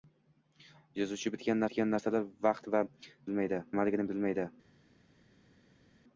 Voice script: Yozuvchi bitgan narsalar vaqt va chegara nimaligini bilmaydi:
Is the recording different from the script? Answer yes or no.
yes